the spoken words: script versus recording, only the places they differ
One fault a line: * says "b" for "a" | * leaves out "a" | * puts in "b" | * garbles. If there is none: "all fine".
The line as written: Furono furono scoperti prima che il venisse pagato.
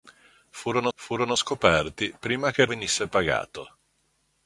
all fine